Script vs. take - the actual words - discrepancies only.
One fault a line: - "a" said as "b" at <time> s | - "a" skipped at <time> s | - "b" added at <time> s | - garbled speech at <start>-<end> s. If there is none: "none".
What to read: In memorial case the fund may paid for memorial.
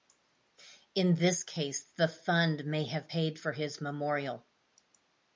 - "memorial" said as "this" at 1.1 s
- "have" added at 2.9 s
- "his" added at 3.5 s